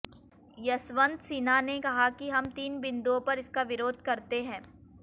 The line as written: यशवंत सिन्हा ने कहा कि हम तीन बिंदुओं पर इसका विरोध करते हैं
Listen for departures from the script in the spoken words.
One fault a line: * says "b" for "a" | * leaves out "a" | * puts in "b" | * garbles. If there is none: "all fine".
all fine